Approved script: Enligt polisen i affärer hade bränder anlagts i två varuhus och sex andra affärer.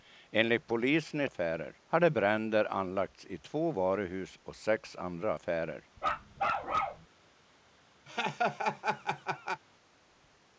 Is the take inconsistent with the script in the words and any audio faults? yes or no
yes